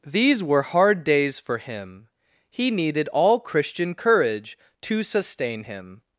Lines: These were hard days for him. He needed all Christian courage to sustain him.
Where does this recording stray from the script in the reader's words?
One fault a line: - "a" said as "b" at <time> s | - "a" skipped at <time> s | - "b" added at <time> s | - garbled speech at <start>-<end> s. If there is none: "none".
none